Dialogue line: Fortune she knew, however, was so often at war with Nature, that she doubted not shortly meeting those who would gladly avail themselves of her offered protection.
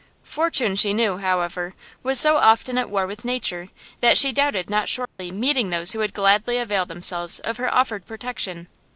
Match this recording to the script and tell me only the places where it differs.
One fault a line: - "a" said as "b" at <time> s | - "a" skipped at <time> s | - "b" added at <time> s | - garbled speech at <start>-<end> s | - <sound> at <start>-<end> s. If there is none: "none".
- dropout at 5.0-5.2 s